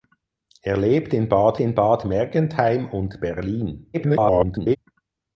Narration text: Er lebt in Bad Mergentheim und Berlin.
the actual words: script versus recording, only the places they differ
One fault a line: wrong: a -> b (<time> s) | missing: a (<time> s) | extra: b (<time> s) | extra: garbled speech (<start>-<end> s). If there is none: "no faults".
extra: in Bad (1.6 s)
extra: garbled speech (3.9-4.8 s)